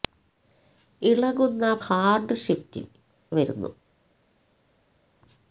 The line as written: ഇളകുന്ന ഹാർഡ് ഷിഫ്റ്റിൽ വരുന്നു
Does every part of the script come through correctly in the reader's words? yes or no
yes